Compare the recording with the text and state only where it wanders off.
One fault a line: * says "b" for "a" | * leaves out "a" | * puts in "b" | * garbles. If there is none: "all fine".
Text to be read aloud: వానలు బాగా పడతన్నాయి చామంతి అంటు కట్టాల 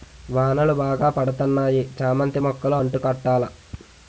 * puts in "మొక్కలు"